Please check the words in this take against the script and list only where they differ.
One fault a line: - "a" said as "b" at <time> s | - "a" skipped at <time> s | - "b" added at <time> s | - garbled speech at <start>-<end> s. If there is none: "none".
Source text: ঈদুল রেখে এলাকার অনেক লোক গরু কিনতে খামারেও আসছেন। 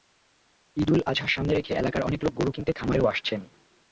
- "আজহা সামনে" added at 1.0 s